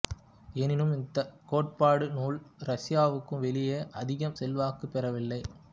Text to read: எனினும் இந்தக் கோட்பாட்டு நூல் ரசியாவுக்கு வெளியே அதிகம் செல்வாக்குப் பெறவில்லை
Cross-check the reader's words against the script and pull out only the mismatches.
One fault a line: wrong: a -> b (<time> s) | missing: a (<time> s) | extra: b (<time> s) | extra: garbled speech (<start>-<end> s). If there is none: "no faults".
no faults